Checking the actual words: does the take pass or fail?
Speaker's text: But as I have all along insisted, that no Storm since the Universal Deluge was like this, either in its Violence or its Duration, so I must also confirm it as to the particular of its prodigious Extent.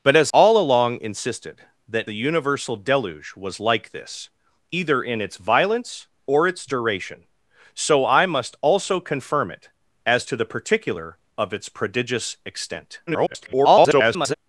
fail